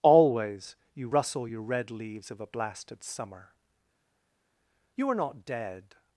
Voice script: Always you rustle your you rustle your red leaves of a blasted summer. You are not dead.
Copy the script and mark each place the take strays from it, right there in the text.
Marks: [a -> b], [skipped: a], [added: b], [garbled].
Always you rustle your [skipped: you rustle your] red leaves of a blasted summer. You are not dead.